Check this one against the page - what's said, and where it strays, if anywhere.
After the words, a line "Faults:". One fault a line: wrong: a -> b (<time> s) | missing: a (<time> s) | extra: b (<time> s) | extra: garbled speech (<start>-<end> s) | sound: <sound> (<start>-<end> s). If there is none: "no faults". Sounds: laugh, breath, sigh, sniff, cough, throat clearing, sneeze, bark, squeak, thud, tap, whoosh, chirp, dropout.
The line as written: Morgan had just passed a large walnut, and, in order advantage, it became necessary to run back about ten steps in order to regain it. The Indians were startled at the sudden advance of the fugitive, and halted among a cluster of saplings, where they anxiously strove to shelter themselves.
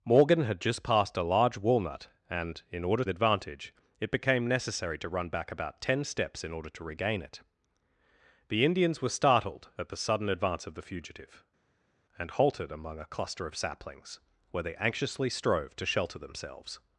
Morgan had just passed a large walnut, and, in order advantage, it became necessary to run back about ten steps in order to regain it. The Indians were startled at the sudden advance of the fugitive, and halted among a cluster of saplings, where they anxiously strove to shelter themselves.
Faults:
no faults